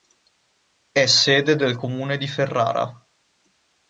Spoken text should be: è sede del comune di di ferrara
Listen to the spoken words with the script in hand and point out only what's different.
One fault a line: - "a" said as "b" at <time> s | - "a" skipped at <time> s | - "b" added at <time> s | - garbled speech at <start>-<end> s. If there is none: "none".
- "di" skipped at 2.3 s